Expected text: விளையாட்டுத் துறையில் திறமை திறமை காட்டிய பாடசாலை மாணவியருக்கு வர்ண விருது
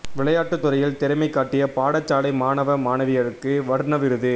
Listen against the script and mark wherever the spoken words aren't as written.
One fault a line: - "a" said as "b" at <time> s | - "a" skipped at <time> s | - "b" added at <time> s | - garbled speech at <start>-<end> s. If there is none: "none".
- "திறமை" skipped at 1.3 s
- "மாணவ" added at 2.3 s